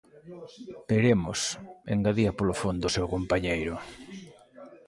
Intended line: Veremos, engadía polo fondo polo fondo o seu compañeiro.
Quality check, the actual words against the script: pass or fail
fail